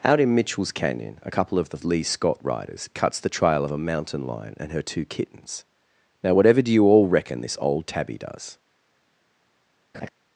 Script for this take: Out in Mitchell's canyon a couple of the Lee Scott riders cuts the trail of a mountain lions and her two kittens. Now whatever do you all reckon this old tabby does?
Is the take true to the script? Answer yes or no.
no